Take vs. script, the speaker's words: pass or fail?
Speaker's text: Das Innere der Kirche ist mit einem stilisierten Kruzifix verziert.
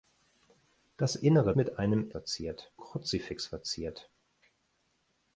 fail